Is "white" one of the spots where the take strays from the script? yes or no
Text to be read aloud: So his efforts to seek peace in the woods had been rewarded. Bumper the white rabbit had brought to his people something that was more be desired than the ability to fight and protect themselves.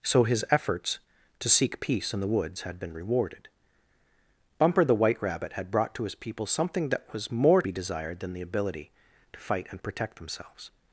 no